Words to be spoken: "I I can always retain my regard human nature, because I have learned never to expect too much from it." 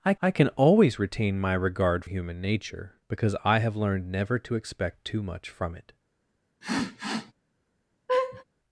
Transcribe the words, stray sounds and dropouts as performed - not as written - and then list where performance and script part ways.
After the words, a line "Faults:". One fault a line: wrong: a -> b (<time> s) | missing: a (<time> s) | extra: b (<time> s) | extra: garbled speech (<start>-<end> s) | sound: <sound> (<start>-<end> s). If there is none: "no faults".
"I I can always retain my regard human nature, because I have learned never to expect too much from it."
Faults:
sound: sniff (6.6-7.3 s)
sound: laugh (8.1-8.4 s)